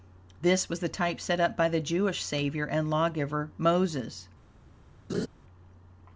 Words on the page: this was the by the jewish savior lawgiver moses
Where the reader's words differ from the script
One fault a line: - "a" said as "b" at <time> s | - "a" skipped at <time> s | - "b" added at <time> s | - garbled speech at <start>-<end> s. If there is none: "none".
- "type set up" added at 0.9 s
- "and" added at 2.6 s